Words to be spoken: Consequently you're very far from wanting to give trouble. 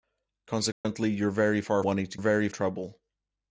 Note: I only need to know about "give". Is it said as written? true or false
false